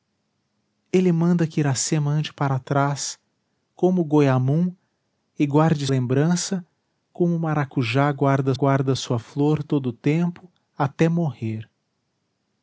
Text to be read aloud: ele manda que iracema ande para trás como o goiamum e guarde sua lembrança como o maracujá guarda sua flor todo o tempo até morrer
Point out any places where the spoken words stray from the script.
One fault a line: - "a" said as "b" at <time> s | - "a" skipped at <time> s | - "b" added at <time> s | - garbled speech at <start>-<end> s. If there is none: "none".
- "sua" skipped at 5.9 s
- "guarda" added at 8.5 s